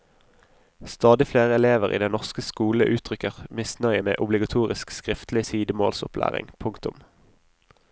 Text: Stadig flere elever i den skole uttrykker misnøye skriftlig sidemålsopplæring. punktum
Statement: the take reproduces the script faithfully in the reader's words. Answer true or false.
false